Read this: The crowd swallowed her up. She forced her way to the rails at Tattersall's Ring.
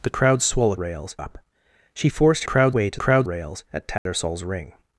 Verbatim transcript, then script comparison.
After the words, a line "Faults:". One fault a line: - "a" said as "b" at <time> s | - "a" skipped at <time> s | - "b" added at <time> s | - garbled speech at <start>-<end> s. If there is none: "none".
The crowd swallowed rails up. She forced crowd way to crowd rails at Tattersall's Ring.
Faults:
- "her" said as "rails" at 0.8 s
- "her" said as "crowd" at 2.4 s
- "the" said as "crowd" at 3.0 s